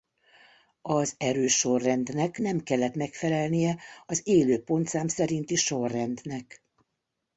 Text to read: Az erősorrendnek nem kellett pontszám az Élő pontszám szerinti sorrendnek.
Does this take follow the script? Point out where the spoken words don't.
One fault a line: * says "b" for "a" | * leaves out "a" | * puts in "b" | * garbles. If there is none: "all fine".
* says "megfelelnie" for "pontszám"